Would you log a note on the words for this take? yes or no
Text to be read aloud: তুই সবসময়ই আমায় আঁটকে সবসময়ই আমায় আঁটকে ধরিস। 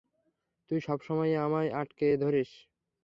yes